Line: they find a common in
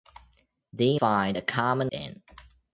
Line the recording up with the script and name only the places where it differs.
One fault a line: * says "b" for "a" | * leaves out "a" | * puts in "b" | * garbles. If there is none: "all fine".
all fine